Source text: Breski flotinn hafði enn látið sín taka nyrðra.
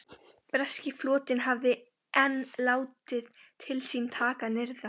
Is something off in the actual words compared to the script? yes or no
yes